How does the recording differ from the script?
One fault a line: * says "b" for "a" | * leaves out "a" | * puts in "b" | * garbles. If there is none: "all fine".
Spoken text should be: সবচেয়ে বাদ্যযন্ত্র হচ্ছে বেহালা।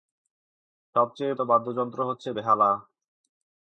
all fine